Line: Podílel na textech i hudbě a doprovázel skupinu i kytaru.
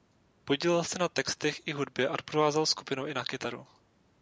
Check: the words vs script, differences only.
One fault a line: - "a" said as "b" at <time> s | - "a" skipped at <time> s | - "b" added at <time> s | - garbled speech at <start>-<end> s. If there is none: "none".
- "se" added at 0.8 s
- "na" added at 3.1 s